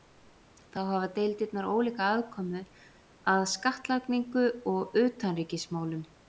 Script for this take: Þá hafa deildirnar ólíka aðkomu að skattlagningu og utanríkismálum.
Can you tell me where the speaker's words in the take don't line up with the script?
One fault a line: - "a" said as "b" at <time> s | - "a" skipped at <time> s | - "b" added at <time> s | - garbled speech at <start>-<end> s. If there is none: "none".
none